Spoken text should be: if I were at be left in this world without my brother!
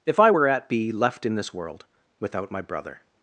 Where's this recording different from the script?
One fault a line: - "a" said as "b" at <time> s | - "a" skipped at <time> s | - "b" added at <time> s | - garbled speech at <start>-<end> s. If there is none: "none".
none